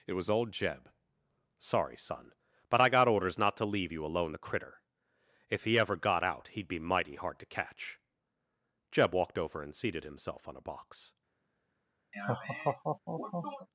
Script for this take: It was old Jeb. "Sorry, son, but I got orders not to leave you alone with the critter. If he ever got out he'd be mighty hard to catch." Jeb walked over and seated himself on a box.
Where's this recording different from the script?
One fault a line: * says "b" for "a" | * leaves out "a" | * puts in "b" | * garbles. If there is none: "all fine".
* leaves out "with"